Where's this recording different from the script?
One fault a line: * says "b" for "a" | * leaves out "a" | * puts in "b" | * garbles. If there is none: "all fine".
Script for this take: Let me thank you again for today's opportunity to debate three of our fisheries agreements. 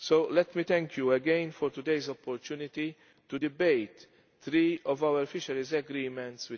all fine